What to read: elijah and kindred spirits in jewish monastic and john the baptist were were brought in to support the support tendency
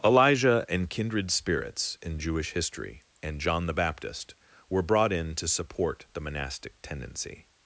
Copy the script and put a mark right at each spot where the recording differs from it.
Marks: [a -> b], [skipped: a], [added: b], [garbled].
elijah and kindred spirits in jewish [monastic -> history] and john the baptist were [skipped: were] brought in to support the [support -> monastic] tendency